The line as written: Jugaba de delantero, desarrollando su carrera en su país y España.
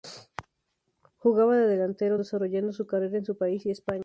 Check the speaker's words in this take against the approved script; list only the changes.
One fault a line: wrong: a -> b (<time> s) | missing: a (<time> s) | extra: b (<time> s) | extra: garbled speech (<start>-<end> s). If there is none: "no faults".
no faults